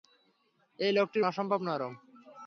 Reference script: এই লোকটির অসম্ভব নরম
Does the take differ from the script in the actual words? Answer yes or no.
no